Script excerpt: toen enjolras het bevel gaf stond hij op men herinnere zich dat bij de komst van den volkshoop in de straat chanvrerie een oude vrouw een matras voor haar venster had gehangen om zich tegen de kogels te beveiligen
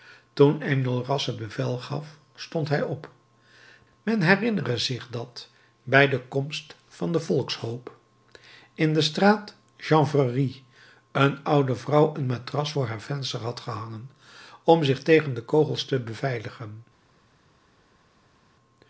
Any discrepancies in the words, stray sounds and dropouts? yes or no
no